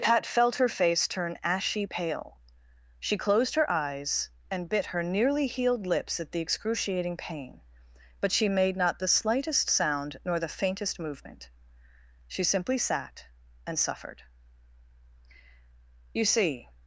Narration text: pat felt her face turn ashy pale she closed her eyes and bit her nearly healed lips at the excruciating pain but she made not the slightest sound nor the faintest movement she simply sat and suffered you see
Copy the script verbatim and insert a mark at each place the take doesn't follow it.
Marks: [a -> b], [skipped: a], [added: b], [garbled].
pat felt her face turn ashy pale she closed her eyes and bit her nearly healed lips at the excruciating pain but she made not the slightest sound nor the faintest movement she simply sat and suffered you see